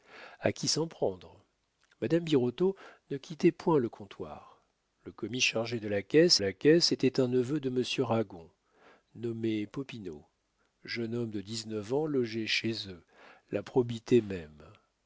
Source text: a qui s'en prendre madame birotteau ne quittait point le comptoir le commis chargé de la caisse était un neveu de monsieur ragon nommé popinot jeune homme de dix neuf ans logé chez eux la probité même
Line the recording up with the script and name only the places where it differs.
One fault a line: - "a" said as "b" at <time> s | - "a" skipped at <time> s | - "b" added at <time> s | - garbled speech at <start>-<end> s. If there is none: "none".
- "la caisse" added at 6.4 s